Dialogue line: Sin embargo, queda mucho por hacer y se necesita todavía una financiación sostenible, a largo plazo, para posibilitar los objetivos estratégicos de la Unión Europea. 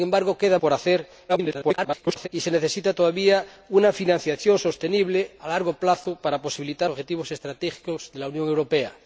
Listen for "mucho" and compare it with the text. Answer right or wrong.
wrong